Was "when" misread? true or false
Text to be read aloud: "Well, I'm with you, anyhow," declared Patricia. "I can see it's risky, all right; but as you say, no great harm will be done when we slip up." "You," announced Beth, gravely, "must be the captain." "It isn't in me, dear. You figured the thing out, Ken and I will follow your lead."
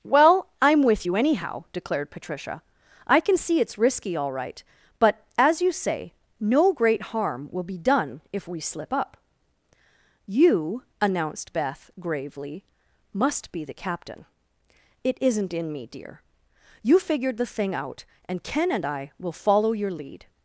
true